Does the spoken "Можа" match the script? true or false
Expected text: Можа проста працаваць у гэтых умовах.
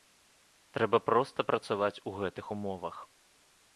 false